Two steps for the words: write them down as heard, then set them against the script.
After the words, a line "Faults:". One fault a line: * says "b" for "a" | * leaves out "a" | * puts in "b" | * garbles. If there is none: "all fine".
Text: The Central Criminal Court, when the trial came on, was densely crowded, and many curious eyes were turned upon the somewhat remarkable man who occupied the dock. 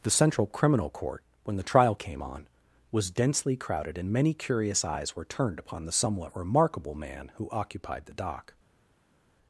The Central Criminal Court, when the trial came on, was densely crowded, and many curious eyes were turned upon the somewhat remarkable man who occupied the dock.
Faults:
all fine